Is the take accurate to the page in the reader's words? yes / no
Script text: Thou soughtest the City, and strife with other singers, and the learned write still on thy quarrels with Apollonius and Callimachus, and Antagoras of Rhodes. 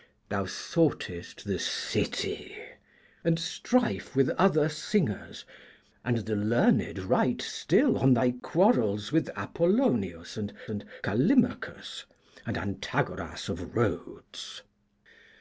no